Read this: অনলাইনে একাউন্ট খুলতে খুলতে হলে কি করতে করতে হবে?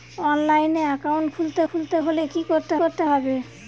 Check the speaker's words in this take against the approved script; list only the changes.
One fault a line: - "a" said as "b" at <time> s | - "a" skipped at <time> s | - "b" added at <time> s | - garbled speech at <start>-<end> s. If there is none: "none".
none